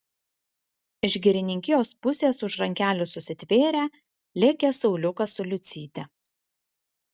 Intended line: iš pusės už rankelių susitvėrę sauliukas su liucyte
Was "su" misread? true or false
false